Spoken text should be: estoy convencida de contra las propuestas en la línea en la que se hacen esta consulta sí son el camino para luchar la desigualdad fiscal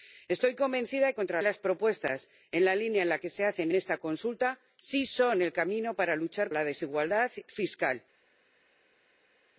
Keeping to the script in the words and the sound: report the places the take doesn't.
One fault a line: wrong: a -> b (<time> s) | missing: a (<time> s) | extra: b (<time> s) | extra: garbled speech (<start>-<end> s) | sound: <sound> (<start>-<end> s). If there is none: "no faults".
no faults